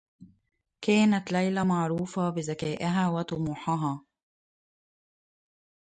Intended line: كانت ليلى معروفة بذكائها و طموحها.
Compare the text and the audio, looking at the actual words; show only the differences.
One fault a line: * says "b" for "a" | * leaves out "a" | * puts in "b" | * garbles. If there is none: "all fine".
all fine